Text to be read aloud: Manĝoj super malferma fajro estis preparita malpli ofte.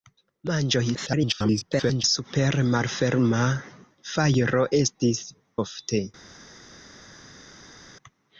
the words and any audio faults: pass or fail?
fail